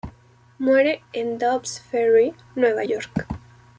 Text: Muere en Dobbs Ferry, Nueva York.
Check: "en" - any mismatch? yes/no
no